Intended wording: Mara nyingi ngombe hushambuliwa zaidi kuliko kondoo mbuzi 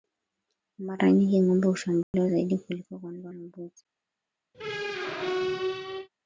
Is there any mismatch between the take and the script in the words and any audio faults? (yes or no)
yes